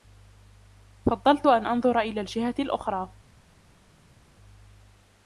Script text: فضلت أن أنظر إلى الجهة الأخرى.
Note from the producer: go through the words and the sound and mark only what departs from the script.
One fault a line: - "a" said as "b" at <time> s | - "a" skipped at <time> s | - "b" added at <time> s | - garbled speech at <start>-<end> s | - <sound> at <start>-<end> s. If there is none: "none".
none